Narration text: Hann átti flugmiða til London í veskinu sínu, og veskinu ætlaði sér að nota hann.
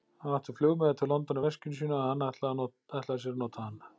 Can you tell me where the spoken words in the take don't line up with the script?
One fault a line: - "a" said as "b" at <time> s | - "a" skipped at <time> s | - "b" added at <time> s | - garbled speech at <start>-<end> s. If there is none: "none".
- "veskinu" said as "hann" at 2.1 s